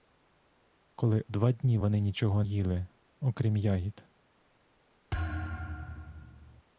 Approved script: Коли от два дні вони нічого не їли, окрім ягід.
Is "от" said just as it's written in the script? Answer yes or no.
no